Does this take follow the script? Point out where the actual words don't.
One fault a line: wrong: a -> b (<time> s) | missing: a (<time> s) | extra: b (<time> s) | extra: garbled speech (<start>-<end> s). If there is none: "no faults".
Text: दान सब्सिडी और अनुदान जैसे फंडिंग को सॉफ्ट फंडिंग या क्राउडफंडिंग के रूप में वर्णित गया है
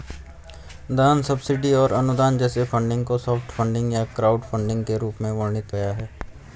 no faults